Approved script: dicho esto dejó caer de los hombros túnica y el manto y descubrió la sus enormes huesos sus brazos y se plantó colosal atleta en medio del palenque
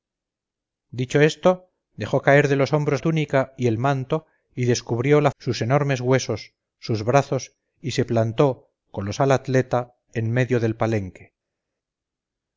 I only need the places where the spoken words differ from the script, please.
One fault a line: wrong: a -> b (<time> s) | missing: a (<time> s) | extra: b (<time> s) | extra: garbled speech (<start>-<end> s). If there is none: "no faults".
no faults